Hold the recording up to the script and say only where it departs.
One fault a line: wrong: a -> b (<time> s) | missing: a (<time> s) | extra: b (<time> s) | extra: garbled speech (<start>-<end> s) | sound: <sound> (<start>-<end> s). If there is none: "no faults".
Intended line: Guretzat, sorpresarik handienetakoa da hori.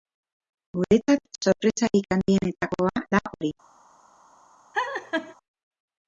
sound: laugh (4.7-5.4 s)